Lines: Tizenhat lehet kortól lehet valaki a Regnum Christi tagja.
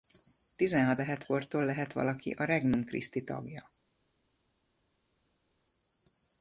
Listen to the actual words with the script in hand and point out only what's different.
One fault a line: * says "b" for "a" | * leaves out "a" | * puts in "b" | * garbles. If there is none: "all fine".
all fine